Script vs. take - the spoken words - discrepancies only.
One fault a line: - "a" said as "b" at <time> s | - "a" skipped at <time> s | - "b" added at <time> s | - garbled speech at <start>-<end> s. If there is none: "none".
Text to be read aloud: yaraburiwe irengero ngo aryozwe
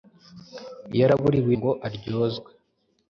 - "irengero" skipped at 1.5 s